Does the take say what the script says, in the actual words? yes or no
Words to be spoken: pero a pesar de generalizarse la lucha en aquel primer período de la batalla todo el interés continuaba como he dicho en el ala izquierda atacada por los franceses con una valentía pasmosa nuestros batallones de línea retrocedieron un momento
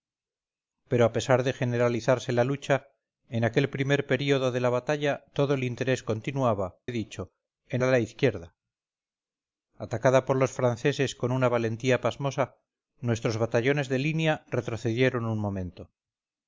no